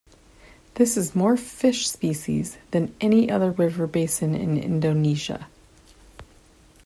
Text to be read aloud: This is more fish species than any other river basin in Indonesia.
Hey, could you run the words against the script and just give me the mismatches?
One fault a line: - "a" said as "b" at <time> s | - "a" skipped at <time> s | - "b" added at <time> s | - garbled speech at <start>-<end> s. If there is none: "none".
none